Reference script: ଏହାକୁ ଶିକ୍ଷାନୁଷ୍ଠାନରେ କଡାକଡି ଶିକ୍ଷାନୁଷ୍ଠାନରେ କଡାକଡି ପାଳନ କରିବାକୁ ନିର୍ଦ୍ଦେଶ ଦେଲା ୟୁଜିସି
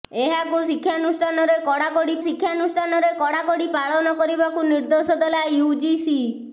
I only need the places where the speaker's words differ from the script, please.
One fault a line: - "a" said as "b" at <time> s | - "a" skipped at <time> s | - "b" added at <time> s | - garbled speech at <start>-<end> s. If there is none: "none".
none